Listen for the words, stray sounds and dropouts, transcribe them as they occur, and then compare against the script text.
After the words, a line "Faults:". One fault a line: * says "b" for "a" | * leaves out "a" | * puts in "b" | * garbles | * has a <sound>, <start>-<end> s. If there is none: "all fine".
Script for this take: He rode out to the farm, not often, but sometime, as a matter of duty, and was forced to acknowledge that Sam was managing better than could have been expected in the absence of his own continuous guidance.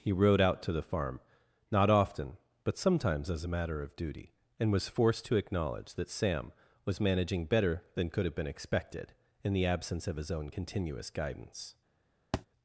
He rode out to the farm, not often, but sometimes, as a matter of duty, and was forced to acknowledge that Sam was managing better than could have been expected in the absence of his own continuous guidance.
Faults:
* says "sometimes" for "sometime"
* has a thud, 12.3-12.5 s